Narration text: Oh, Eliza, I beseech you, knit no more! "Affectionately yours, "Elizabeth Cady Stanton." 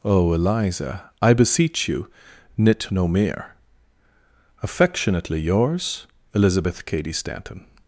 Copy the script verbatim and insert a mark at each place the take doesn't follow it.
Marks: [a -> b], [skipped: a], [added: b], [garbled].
Oh, Eliza, I beseech you, knit no [more! -> mere] "Affectionately yours, "Elizabeth Cady Stanton."